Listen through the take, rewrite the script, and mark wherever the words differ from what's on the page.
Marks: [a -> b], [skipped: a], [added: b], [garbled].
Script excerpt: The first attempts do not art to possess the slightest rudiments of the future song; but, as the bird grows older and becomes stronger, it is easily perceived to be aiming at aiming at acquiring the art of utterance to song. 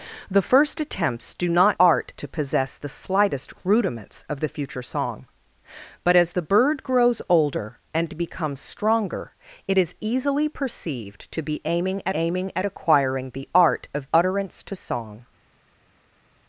The first attempts do not art to possess the slightest rudiments of the future song; but, as the bird grows older and becomes stronger, it is easily perceived to be aiming at aiming at acquiring the art of utterance to song.